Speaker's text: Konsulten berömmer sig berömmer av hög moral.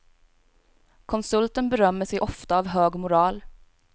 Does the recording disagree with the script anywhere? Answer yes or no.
yes